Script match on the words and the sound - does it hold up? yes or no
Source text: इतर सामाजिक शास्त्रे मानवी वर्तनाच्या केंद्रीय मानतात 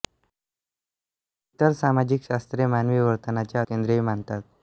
yes